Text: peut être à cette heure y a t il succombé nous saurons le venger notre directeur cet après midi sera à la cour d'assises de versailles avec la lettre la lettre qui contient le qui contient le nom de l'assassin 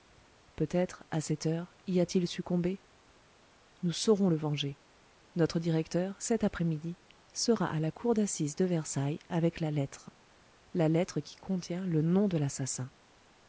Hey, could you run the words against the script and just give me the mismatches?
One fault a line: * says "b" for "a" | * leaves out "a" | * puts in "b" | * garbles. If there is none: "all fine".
* leaves out "qui contient le"